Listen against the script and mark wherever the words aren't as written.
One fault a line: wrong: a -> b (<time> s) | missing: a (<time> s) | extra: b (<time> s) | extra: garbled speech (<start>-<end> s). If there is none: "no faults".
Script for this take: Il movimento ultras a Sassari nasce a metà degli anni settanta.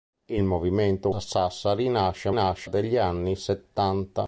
missing: ultras (1.1 s)
wrong: metà -> nasce (2.3 s)